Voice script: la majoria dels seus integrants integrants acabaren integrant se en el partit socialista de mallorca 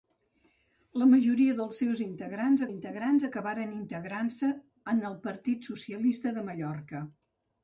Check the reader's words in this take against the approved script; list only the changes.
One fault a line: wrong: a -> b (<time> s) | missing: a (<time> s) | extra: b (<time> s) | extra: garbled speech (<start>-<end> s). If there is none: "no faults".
no faults